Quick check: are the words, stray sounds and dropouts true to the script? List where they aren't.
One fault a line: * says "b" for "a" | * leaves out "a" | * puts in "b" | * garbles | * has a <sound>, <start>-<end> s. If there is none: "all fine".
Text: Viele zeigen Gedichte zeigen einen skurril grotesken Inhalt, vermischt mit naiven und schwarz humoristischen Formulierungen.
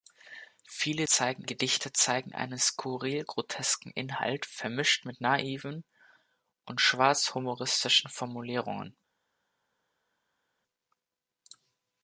all fine